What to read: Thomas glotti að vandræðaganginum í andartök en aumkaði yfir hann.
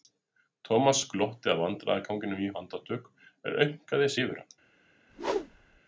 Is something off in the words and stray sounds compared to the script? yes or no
yes